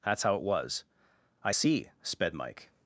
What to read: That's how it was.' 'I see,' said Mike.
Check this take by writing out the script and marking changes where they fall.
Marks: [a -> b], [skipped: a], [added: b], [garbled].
That's how it was.' 'I see,' [said -> sped] Mike.